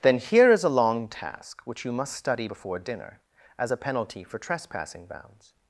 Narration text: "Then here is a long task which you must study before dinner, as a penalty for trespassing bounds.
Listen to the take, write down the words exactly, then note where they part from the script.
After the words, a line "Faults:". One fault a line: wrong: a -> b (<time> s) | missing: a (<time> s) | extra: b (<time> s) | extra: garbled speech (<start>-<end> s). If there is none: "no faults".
"Then here is a long task which you must study before dinner, as a penalty for trespassing bounds.
Faults:
no faults